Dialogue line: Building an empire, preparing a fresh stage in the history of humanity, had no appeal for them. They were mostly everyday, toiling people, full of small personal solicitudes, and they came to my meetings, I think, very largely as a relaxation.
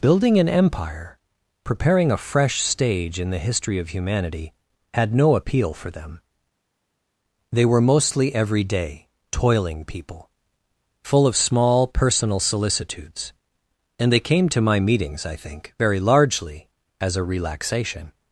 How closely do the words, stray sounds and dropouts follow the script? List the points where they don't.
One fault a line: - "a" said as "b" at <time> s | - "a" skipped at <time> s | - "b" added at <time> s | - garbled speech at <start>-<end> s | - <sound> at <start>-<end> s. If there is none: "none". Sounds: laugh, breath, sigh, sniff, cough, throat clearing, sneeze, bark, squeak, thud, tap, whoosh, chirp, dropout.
none